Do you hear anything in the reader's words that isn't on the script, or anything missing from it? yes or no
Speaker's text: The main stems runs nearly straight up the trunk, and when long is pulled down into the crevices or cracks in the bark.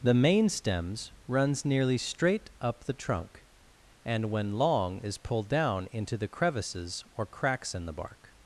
no